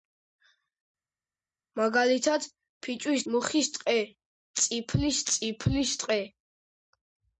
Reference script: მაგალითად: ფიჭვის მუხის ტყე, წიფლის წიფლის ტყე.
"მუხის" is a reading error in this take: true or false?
false